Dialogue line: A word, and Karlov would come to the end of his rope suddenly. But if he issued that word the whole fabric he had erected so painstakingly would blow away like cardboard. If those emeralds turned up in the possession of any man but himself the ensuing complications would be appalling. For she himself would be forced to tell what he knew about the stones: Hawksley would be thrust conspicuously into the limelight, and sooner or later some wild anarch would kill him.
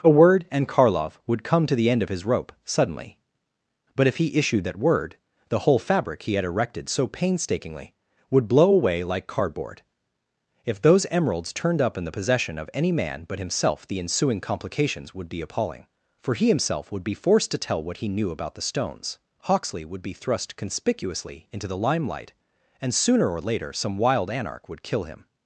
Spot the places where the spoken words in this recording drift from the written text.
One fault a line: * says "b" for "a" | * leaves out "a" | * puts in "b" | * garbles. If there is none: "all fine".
* says "he" for "she"